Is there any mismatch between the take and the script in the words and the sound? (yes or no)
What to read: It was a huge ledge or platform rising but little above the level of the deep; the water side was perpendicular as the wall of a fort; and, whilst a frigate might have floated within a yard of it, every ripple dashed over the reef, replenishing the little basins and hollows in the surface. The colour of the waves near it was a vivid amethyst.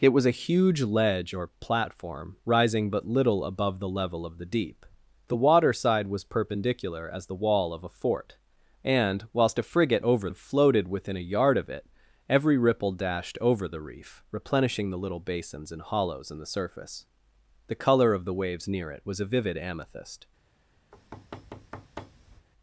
yes